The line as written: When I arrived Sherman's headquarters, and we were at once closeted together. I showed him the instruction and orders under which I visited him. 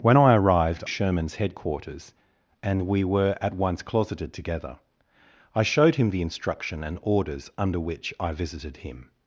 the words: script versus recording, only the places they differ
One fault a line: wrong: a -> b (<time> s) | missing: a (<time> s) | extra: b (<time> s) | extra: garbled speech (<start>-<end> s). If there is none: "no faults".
no faults